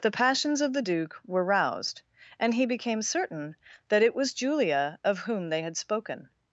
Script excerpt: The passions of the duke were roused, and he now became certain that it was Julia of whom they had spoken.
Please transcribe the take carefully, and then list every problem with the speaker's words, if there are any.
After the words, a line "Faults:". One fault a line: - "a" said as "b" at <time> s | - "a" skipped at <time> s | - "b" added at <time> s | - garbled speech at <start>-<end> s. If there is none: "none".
The passions of the duke were roused, and he became certain that it was Julia of whom they had spoken.
Faults:
- "now" skipped at 2.6 s